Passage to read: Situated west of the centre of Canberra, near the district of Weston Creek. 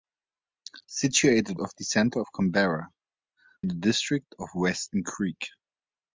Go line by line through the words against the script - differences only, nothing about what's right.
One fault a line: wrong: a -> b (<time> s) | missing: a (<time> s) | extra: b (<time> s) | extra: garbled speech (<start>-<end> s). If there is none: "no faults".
missing: west (1.6 s)
missing: near (2.9 s)